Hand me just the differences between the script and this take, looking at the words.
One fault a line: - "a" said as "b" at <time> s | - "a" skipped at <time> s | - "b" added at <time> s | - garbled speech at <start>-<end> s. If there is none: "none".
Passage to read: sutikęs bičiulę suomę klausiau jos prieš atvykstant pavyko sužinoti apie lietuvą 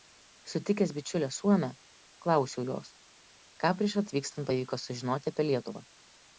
- "ką" added at 3.6 s